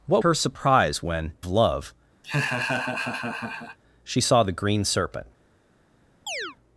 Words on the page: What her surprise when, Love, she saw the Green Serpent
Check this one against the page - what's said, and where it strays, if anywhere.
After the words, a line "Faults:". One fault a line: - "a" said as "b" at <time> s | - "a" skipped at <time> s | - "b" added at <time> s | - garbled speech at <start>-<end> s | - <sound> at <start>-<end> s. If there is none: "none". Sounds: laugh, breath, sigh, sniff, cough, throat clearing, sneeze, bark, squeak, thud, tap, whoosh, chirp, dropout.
What her surprise when, Love, she saw the Green Serpent
Faults:
- laugh at 2.2-3.8 s
- chirp at 6.3-6.6 s